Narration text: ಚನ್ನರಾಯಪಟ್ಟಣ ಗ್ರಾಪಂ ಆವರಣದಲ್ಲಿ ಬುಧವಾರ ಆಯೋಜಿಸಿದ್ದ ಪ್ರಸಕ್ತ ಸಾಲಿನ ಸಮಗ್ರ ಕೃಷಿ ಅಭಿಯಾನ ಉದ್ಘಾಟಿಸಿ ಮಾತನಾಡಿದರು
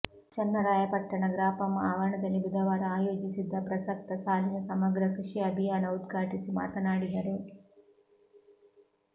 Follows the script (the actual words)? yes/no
yes